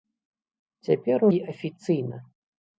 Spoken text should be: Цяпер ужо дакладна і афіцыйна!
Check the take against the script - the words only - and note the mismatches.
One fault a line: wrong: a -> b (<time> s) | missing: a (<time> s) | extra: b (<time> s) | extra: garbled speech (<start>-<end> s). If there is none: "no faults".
missing: ужо дакладна (1.3 s)